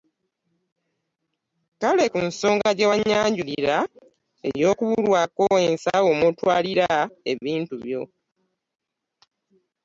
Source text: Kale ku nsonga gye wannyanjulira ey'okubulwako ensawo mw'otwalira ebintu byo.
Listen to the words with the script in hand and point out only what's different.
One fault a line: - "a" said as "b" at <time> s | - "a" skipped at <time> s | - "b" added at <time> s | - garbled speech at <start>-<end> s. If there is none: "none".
none